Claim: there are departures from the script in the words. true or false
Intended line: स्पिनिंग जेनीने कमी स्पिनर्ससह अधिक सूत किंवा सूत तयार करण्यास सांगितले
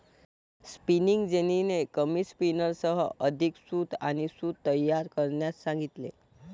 true